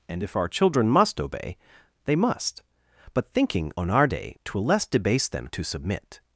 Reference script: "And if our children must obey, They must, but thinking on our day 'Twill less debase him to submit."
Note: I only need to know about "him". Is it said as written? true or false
false